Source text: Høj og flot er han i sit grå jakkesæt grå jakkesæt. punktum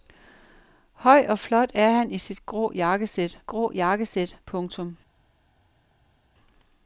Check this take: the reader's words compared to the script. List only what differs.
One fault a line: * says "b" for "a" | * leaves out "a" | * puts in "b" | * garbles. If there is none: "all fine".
all fine